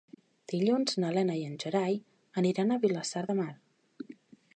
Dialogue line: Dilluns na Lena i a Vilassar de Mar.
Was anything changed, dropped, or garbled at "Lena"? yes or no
no